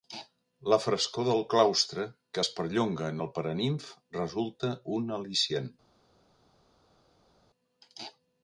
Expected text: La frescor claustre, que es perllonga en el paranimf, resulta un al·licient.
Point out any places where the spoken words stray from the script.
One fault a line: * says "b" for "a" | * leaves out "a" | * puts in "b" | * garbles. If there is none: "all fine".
* puts in "del"